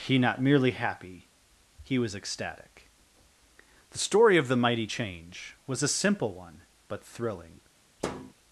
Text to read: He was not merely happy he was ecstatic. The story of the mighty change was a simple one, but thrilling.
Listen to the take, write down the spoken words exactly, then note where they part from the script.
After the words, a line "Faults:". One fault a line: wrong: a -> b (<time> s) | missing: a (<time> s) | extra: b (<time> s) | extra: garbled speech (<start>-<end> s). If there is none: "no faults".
He not merely happy he was ecstatic. The story of the mighty change was a simple one, but thrilling.
Faults:
missing: was (0.2 s)